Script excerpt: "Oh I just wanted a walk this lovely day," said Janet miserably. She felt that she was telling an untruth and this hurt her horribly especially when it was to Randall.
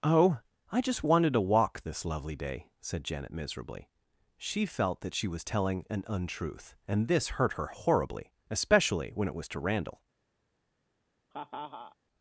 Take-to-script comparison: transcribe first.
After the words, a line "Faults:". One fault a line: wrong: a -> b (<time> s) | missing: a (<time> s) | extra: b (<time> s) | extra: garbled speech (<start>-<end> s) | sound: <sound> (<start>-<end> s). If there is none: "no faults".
"Oh I just wanted to walk this lovely day," said Janet miserably. She felt that she was telling an untruth and this hurt her horribly especially when it was to Randall.
Faults:
wrong: a -> to (1.3 s)
sound: laugh (11.3-12.0 s)